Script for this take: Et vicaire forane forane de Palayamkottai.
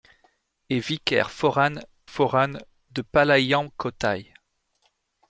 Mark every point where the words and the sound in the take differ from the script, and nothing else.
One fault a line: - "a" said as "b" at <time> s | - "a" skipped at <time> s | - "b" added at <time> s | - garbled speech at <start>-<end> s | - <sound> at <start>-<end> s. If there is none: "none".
none